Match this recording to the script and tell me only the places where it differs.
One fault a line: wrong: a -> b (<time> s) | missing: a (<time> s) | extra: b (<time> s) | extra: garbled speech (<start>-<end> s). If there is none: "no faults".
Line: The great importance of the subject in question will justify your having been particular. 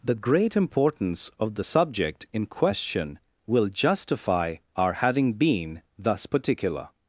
wrong: your -> our (4.7 s)
extra: thus (6.0 s)